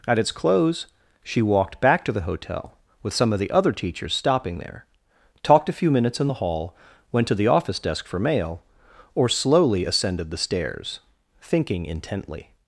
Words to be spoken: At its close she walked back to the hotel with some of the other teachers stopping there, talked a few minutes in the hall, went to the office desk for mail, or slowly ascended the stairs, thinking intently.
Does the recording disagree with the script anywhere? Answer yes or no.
no